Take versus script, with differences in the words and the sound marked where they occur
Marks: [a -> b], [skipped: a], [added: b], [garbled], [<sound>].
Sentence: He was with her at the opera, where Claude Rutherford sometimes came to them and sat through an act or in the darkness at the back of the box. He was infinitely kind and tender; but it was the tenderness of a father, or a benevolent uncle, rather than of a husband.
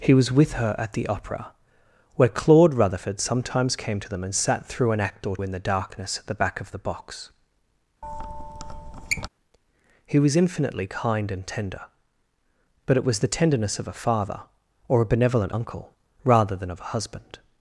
He was with her at the opera, where Claude Rutherford sometimes came to them and sat through an act or in the darkness at the back of the box. [squeak] He was infinitely kind and tender; but it was the tenderness of a father, or a benevolent uncle, rather than of a husband.